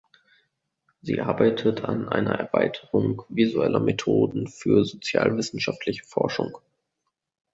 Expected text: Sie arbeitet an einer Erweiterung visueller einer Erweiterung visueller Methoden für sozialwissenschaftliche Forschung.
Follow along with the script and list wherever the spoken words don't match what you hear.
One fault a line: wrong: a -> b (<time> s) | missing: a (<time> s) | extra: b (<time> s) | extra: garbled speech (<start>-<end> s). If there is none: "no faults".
missing: einer Erweiterung visueller (3.8 s)